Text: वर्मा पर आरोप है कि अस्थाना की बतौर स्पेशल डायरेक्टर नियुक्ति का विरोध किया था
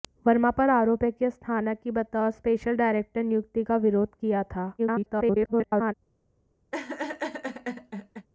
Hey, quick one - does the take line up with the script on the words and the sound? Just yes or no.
no